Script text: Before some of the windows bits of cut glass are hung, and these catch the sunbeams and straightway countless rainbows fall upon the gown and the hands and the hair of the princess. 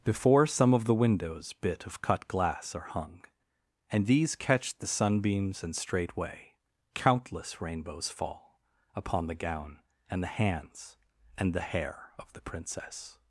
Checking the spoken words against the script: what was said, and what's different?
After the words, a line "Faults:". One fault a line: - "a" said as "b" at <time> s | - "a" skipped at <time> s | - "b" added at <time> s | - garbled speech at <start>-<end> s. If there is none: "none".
Before some of the windows bit of cut glass are hung, and these catch the sunbeams and straightway countless rainbows fall upon the gown and the hands and the hair of the princess.
Faults:
- "bits" said as "bit" at 1.5 s